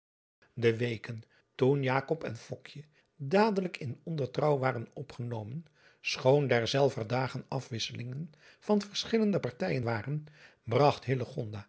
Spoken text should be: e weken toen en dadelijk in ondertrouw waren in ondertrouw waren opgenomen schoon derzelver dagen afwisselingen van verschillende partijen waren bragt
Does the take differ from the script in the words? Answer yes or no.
yes